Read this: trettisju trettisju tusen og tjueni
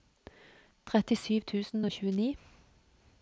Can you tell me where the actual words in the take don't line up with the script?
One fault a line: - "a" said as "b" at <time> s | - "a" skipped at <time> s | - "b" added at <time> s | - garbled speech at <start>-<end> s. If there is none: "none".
- "trettisju" skipped at 1.4 s